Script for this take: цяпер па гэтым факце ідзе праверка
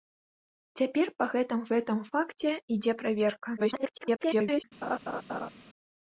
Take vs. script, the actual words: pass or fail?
fail